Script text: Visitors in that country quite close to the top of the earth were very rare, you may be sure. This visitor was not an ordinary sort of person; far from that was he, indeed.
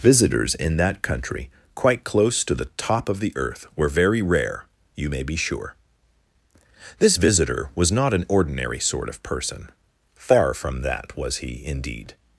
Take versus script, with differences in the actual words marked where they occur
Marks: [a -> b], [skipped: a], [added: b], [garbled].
Visitors in that country quite close to the top of the earth were very rare, you may be sure. This visitor was not an ordinary sort of person; far from that was he, indeed.